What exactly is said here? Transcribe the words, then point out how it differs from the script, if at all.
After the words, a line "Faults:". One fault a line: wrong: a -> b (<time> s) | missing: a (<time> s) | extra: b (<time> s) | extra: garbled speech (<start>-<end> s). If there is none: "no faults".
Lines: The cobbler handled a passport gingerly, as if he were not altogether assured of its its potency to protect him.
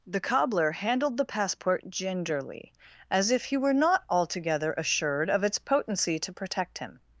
The cobbler handled the passport gingerly, as if he were not altogether assured of its potency to protect him.
Faults:
wrong: a -> the (1.2 s)
missing: its (5.6 s)